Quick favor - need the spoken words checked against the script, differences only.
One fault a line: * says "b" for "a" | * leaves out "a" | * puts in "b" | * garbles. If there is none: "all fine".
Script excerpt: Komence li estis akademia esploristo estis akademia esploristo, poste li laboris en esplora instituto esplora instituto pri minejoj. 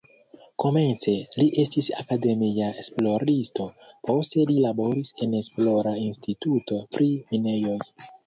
* leaves out "estis akademia esploristo"
* leaves out "esplora instituto"